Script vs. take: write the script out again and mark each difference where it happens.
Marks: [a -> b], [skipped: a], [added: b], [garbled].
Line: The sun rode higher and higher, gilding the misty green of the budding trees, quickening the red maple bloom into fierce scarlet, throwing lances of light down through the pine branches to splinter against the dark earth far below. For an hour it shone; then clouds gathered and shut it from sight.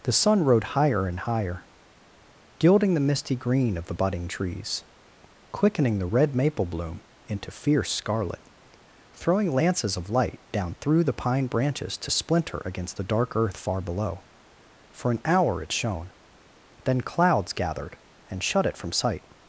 The sun rode higher and higher, gilding the misty green of the budding trees, quickening the red maple bloom into fierce scarlet, throwing lances of light down through the pine branches to splinter against the dark earth far below. For an hour it shone; then clouds gathered and shut it from sight.